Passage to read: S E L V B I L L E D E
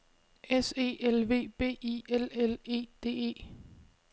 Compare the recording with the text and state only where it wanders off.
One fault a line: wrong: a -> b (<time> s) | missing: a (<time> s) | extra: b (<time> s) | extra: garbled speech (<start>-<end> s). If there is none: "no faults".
no faults